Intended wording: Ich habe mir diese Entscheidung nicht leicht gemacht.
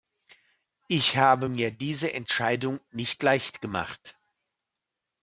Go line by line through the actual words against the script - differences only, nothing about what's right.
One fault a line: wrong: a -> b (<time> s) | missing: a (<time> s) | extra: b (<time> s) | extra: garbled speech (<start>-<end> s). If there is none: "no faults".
no faults